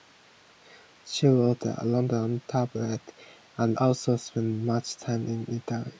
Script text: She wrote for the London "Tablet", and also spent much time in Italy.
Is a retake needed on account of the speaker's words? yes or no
yes